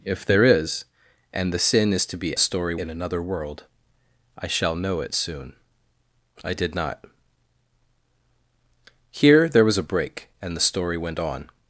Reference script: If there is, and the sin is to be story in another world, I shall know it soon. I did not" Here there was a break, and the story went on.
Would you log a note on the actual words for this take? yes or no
no